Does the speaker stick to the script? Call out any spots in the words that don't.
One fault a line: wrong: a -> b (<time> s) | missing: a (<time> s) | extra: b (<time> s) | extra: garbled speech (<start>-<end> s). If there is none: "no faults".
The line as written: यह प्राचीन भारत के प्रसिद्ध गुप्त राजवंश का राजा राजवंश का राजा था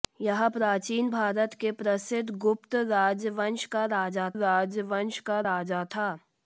no faults